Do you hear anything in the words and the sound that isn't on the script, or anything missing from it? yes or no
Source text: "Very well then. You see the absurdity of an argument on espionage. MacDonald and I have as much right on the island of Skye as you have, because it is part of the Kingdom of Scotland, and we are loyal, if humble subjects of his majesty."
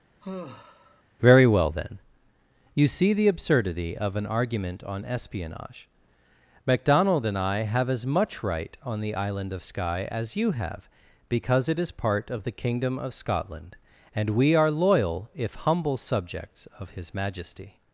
yes